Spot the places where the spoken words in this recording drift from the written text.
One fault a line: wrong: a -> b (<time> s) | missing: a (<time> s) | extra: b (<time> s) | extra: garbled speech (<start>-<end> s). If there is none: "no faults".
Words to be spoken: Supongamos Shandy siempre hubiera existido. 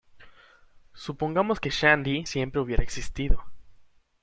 extra: que (1.6 s)